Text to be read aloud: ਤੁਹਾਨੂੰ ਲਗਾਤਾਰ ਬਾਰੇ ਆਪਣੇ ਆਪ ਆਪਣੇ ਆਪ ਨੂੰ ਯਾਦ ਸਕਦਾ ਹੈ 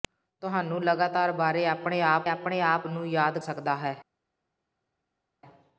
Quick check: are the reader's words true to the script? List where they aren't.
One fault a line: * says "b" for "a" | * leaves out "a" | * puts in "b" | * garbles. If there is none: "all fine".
all fine